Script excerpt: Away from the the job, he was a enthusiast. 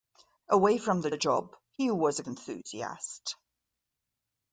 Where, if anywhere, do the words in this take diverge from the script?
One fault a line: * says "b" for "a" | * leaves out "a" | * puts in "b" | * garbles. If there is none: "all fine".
all fine